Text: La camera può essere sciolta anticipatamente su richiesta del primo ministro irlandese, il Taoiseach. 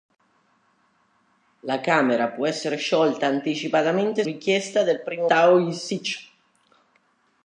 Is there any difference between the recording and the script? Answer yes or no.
yes